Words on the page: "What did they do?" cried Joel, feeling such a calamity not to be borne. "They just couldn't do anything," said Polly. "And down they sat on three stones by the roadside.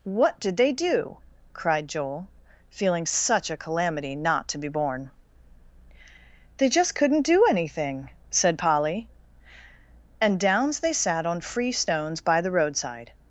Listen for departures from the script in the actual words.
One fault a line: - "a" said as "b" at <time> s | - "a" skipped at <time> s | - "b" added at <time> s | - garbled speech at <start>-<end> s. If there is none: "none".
- "down" said as "downs" at 10.4 s
- "three" said as "free" at 11.4 s